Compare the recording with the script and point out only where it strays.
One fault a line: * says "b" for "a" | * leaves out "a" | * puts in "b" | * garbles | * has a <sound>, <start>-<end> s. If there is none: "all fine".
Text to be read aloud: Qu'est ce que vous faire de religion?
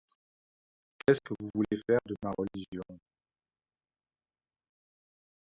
* puts in "voulez"
* puts in "ma"